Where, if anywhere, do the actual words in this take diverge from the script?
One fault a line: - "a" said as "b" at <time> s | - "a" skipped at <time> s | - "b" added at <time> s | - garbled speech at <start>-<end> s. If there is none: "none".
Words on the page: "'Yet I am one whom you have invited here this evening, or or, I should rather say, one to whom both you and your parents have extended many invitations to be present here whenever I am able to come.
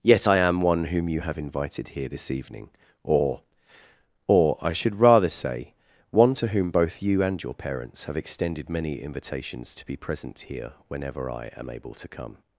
none